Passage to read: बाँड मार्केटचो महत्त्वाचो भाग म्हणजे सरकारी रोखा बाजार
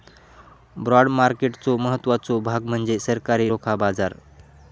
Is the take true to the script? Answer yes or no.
yes